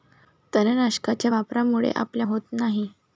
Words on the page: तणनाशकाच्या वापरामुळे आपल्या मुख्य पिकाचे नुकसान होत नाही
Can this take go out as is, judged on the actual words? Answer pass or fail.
fail